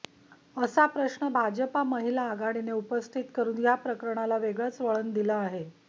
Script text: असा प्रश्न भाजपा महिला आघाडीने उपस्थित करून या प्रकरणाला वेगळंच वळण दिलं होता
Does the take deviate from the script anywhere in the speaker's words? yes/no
yes